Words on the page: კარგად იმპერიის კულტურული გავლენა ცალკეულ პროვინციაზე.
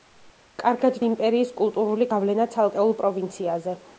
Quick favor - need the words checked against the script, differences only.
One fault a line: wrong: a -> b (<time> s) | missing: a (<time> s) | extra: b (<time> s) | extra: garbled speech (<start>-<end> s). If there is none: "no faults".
no faults